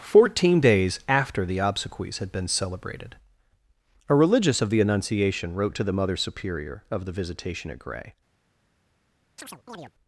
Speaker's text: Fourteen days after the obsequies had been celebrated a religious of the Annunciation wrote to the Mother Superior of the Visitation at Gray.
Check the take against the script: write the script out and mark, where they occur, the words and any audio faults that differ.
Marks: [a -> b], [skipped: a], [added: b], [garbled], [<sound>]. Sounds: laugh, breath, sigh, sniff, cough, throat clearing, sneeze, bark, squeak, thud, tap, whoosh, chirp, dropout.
Fourteen days after the obsequies had been celebrated a religious of the Annunciation wrote to the Mother Superior of the Visitation at Gray. [chirp]